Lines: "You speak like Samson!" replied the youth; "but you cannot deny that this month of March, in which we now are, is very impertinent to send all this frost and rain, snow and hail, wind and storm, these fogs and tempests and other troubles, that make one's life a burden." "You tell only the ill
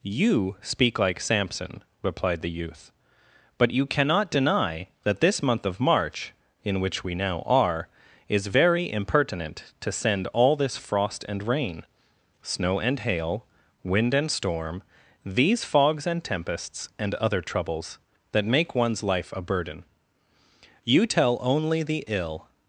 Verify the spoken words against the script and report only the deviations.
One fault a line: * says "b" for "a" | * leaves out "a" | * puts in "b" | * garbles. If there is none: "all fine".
all fine